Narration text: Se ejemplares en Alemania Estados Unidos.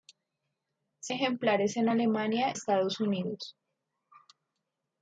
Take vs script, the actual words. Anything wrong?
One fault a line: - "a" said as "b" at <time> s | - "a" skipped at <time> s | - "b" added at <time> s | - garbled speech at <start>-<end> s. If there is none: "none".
none